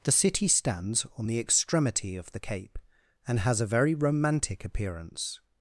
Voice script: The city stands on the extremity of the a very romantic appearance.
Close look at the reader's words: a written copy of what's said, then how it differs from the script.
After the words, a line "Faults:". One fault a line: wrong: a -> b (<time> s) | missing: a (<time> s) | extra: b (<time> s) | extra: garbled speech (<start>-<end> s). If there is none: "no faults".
The city stands on the extremity of the cape, and has a very romantic appearance.
Faults:
extra: cape and has (2.4 s)